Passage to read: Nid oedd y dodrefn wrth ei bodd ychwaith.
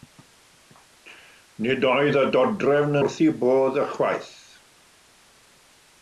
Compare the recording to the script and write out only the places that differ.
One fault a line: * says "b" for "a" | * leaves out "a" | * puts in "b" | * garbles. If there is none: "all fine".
all fine